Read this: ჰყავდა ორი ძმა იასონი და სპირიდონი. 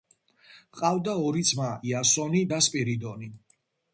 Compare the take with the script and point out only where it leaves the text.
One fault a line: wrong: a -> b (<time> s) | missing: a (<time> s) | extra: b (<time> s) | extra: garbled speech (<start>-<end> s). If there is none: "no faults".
no faults